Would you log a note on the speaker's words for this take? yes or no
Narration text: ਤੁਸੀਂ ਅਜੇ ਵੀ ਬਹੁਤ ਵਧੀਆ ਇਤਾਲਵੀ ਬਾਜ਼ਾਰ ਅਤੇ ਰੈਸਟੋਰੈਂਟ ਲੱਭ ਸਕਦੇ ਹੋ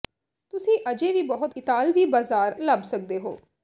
yes